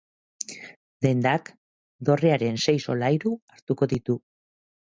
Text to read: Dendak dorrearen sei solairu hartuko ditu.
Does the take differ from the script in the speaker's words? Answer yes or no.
no